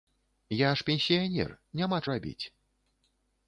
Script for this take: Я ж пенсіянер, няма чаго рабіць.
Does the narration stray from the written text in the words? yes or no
yes